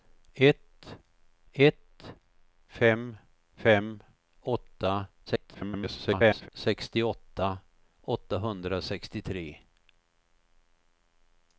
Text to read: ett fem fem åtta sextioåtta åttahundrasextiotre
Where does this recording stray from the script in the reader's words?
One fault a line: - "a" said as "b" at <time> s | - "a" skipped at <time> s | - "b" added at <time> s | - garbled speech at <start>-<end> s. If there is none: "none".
- "ett" added at 1.5 s
- garbled speech at 5.3-6.5 s